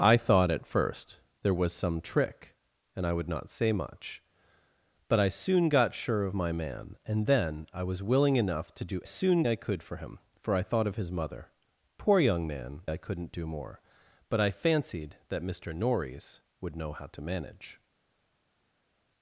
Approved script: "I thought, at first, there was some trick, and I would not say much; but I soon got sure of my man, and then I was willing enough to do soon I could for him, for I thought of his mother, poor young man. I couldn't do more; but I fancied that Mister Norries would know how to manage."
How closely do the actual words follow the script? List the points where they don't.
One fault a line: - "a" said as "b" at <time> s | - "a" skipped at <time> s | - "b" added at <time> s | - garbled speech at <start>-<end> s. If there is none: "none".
none